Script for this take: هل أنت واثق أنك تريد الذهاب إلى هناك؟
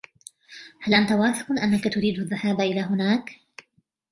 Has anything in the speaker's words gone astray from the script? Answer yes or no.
no